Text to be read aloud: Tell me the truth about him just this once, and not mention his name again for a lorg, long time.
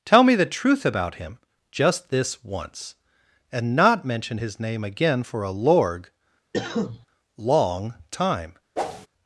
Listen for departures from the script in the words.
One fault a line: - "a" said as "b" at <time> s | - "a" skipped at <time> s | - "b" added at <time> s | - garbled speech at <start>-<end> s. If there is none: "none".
none